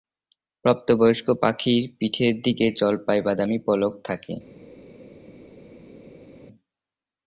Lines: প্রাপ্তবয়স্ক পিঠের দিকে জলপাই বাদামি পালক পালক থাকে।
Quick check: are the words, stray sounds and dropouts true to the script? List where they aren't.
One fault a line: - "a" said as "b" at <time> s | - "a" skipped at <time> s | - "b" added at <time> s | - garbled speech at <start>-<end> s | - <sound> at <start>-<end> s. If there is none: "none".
- "পাখির" added at 1.4 s
- "পালক" skipped at 3.9 s